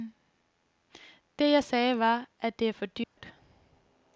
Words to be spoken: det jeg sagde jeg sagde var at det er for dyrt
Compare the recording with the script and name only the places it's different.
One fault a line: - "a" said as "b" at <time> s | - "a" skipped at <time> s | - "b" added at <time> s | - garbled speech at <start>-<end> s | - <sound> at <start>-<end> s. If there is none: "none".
- "jeg sagde" skipped at 2.0 s
- dropout at 3.0-3.2 s